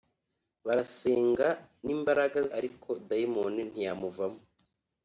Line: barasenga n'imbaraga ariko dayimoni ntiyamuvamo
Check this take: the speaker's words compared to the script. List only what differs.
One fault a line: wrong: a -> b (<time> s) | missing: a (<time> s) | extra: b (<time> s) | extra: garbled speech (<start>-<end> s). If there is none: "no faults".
no faults